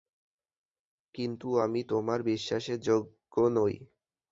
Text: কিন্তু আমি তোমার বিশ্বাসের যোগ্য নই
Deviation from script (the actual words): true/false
false